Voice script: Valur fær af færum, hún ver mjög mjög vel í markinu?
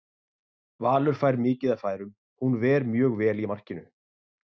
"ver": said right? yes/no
yes